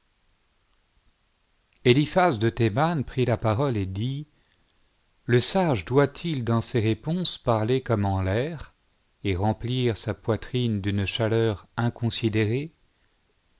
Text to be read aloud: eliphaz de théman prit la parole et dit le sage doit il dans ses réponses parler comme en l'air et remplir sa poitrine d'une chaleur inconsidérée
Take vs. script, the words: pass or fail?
pass